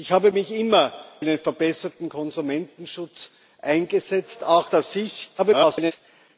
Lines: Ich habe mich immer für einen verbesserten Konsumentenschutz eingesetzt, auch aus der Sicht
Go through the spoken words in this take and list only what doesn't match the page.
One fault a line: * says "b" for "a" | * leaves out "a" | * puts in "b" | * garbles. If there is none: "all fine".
* leaves out "für"
* leaves out "aus"
* garbles